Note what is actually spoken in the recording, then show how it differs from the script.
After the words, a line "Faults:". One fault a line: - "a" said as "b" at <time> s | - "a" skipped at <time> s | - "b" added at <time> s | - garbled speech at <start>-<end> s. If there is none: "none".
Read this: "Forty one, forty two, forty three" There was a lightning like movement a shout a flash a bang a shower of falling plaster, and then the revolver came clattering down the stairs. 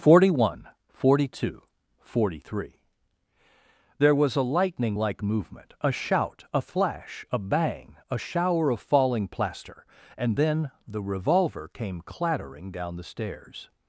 "Forty one, forty two, forty three" There was a lightning like movement a shout a flash a bang a shower of falling plaster, and then the revolver came clattering down the stairs.
Faults:
none